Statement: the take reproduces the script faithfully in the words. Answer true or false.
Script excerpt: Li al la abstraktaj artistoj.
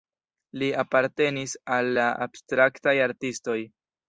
false